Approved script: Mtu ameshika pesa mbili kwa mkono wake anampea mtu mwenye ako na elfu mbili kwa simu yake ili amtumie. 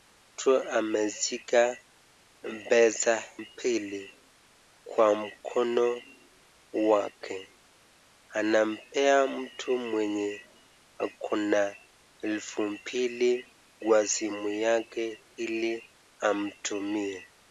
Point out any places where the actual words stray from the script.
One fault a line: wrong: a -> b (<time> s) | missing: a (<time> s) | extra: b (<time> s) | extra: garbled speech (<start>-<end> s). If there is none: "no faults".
no faults